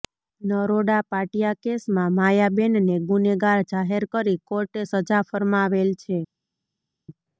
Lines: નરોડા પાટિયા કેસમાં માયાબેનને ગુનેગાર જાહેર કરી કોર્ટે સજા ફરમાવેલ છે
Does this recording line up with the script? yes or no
yes